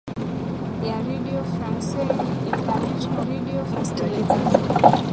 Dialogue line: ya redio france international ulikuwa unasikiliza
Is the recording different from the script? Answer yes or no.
yes